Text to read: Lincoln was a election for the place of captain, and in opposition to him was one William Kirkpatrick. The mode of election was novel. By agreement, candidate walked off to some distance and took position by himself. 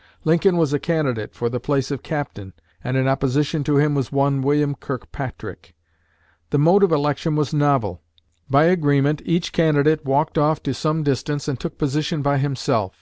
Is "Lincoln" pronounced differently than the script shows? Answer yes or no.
no